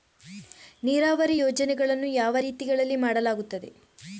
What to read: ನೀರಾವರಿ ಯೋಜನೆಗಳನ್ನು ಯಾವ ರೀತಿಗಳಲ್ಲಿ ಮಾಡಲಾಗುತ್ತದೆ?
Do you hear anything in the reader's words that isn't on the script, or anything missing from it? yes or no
no